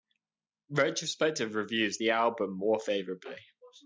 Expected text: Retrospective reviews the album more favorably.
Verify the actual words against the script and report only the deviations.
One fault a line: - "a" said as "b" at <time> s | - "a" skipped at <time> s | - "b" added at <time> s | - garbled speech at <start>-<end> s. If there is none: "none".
none